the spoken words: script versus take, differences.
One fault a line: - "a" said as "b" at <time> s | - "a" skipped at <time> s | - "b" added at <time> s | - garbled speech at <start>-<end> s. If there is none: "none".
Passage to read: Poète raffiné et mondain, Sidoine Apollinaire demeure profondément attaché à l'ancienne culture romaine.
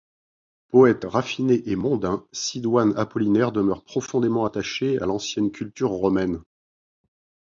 none